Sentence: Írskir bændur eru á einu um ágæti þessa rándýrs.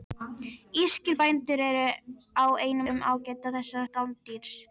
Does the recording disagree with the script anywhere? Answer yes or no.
no